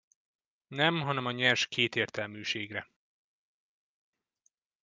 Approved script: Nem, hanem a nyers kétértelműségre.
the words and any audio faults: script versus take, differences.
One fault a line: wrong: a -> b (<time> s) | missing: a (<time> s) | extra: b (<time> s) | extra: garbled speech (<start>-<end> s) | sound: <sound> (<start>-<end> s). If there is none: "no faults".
no faults